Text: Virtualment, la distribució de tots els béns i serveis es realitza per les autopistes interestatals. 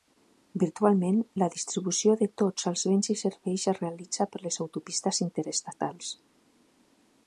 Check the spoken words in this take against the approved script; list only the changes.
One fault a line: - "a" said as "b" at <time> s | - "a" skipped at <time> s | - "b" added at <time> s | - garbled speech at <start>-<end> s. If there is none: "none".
none